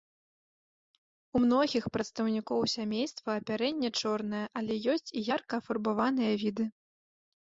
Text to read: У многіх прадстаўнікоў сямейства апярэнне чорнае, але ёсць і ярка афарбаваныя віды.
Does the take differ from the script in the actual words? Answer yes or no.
no